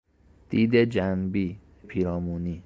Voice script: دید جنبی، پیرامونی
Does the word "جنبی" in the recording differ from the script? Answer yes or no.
no